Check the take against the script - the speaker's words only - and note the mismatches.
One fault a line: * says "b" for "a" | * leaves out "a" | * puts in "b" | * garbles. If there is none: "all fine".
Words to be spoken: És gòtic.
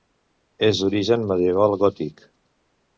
* puts in "d'origen medieval"